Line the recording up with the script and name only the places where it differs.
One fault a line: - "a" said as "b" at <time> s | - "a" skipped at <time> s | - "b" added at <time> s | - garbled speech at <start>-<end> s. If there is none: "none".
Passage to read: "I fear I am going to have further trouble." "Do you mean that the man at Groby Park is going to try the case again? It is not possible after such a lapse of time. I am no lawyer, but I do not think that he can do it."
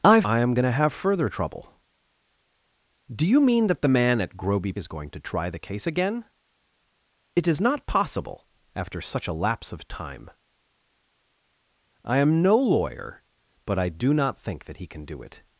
- "fear" skipped at 0.2 s
- "Park" skipped at 4.7 s